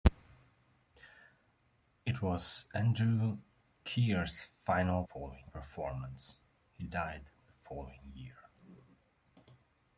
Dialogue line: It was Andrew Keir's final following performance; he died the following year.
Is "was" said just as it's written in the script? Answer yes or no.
yes